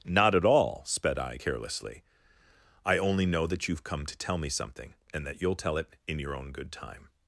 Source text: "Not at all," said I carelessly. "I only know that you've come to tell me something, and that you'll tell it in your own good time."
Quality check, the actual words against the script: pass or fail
fail